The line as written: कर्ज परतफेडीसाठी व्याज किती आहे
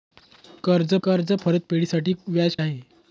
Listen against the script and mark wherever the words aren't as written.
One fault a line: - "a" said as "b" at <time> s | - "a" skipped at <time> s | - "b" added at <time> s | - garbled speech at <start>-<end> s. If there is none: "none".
- "कर्ज" added at 1.0 s
- "किती" skipped at 2.6 s